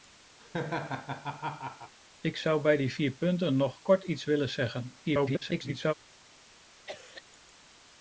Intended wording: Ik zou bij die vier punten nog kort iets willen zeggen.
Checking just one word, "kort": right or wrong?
right